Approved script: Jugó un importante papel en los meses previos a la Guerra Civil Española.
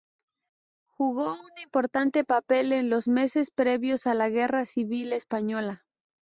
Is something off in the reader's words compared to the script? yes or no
no